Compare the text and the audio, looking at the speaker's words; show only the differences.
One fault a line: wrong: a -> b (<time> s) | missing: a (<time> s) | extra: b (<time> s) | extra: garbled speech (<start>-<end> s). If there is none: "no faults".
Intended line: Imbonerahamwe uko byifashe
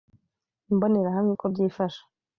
no faults